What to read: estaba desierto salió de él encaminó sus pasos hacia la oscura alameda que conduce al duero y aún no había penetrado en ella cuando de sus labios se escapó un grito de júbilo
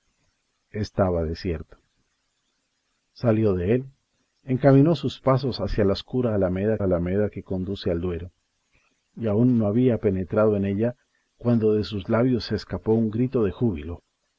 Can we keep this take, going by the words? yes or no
no